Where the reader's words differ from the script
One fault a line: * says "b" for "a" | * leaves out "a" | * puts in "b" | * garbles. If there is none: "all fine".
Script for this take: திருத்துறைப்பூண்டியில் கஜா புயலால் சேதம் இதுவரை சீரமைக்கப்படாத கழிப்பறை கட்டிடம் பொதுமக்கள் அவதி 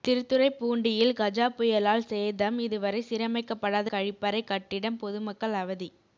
all fine